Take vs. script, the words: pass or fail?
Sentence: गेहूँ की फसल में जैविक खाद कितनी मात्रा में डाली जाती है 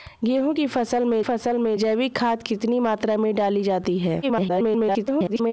fail